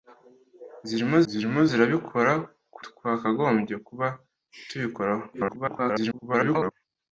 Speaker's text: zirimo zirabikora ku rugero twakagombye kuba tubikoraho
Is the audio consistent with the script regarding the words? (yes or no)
no